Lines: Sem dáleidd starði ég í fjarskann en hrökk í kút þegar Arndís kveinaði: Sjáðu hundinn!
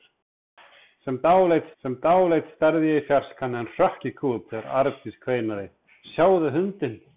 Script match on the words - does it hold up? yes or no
no